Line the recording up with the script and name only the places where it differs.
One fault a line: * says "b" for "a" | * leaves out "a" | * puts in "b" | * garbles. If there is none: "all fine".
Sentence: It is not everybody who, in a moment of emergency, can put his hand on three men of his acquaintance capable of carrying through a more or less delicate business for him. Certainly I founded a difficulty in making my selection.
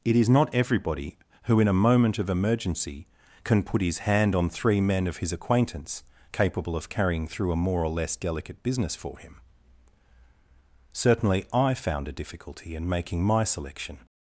* says "found" for "founded"